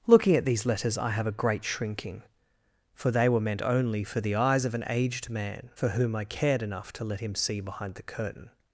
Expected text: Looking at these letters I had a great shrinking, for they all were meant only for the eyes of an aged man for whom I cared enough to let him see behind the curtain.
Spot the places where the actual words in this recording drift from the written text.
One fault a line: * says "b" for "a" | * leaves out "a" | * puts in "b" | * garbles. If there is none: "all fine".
* says "have" for "had"
* leaves out "all"